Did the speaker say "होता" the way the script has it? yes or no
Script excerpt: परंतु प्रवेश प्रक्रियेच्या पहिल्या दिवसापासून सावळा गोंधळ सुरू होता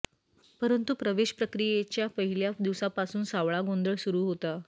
yes